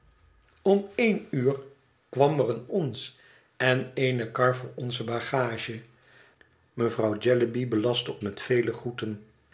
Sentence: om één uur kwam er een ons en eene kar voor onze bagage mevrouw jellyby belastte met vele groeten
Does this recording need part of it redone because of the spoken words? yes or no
no